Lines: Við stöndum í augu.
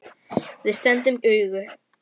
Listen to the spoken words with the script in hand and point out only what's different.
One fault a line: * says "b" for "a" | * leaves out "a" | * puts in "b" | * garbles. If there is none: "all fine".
all fine